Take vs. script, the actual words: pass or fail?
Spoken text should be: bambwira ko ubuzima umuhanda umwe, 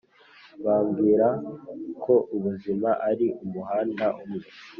fail